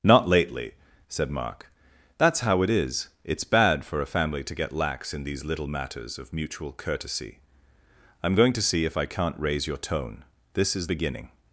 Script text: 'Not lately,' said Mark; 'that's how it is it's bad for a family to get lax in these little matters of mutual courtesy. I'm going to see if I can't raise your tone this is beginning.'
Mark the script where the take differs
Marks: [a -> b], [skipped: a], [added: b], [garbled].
'Not lately,' said Mark; 'that's how it is it's bad for a family to get lax in these little matters of mutual courtesy. I'm going to see if I can't raise your tone this is beginning.'